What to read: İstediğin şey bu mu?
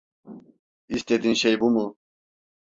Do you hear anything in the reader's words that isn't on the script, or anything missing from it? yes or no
no